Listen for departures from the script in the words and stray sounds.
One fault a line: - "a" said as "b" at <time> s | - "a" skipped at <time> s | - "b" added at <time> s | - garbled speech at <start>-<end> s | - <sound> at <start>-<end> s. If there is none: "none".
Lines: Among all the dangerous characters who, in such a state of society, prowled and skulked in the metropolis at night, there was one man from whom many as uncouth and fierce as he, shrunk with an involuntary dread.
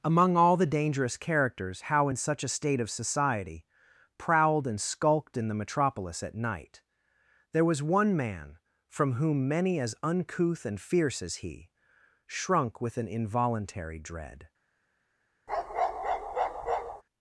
- "who" said as "how" at 1.8 s
- bark at 15.5-17.0 s